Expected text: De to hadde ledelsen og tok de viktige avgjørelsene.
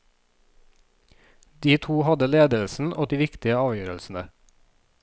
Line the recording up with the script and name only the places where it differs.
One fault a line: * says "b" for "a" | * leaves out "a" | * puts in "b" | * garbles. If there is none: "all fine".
* leaves out "tok"